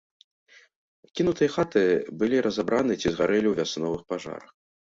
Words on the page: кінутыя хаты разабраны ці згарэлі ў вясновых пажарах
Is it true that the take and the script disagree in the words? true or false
true